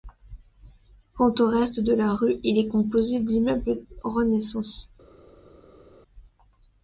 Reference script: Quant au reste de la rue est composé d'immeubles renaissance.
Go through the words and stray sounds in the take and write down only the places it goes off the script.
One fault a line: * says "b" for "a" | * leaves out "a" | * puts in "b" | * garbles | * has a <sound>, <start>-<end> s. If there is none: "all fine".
* puts in "il"